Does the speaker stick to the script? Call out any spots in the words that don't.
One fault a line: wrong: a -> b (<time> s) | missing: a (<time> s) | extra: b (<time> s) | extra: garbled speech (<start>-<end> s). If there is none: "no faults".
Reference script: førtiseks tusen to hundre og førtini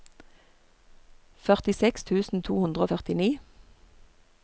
no faults